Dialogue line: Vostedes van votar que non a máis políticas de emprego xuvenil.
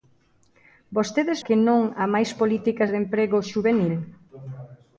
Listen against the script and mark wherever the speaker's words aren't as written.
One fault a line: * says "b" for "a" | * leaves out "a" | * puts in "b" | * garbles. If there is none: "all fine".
* leaves out "van votar"